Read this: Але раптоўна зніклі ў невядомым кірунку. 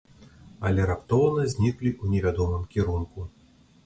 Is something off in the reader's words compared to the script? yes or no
no